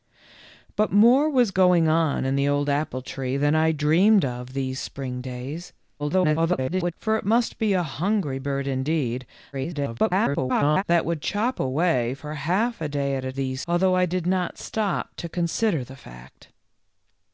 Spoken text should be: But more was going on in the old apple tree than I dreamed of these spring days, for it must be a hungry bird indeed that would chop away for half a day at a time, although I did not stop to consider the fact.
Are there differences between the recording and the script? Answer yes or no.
yes